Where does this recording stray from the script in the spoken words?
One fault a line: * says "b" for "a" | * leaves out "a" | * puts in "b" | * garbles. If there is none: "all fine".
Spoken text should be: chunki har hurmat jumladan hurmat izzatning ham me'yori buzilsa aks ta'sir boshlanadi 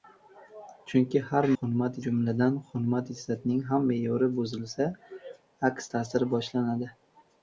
all fine